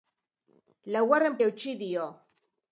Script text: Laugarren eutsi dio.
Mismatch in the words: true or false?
false